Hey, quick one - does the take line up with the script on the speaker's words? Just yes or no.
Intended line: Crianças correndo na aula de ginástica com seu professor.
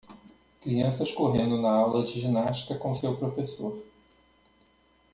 yes